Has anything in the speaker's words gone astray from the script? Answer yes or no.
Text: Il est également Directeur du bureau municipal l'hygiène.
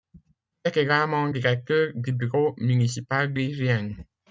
no